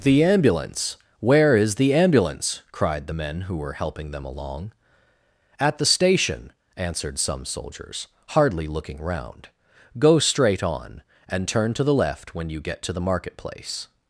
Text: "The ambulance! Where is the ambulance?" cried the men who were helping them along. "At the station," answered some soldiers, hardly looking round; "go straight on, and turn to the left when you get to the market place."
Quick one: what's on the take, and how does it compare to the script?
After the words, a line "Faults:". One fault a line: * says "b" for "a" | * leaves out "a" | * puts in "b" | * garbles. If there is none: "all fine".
"The ambulance! Where is the ambulance?" cried the men who were helping them along. "At the station," answered some soldiers, hardly looking round; "go straight on, and turn to the left when you get to the market place."
Faults:
all fine